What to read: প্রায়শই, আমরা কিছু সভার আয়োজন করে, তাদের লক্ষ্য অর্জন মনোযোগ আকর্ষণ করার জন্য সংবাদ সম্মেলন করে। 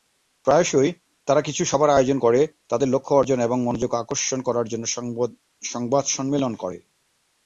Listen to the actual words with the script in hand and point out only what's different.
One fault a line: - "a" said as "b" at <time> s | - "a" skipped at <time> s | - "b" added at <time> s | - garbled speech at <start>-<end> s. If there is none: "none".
- "আমরা" said as "তারা" at 1.3 s
- "এবং" added at 3.4 s